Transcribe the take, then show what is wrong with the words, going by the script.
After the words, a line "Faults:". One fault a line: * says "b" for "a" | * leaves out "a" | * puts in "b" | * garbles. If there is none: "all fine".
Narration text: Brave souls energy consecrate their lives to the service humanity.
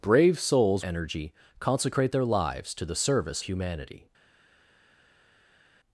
Brave souls energy consecrate their lives to the service humanity.
Faults:
all fine